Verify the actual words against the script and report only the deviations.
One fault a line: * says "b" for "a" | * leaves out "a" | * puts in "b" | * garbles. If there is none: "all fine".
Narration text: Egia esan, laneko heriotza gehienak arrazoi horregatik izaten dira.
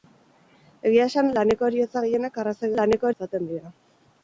* says "laneko" for "horregatik"